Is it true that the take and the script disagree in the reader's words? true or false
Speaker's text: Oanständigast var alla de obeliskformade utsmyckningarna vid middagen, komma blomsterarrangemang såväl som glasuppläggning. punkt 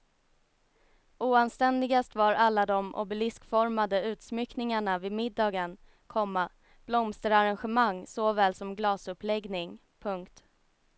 false